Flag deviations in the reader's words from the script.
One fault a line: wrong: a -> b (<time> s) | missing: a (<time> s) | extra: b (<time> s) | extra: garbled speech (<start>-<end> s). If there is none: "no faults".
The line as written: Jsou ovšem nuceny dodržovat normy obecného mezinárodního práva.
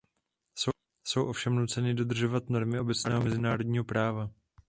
no faults